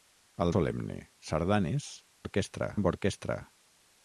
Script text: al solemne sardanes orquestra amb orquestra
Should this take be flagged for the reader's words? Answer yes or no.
no